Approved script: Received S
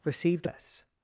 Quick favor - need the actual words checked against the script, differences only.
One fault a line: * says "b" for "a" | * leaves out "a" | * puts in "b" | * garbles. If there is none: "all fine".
all fine